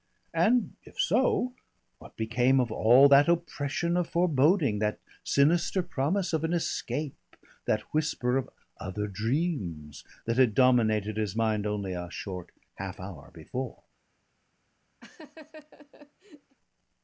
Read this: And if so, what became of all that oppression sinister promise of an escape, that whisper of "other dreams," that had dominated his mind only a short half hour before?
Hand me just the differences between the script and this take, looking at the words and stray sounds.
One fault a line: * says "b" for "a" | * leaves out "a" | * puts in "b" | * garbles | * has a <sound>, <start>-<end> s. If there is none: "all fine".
* puts in "of foreboding that"
* has a laugh, 15.0-16.6 s